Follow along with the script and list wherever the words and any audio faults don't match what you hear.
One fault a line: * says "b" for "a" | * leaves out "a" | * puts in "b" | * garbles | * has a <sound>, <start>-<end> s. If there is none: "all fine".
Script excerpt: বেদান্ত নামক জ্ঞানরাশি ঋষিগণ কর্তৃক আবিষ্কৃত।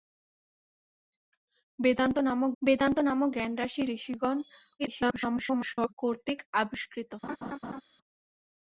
* puts in "বেদান্ত নামক"
* garbles
* has a laugh, 7.2-7.8 s